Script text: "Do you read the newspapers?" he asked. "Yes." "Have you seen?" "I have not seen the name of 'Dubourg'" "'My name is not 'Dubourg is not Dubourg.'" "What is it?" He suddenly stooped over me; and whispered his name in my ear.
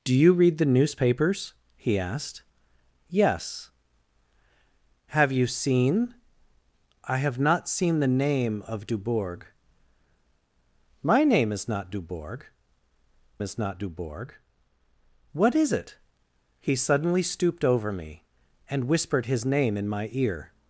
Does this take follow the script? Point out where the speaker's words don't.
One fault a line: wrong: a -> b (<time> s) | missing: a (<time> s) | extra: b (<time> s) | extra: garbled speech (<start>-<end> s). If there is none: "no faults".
no faults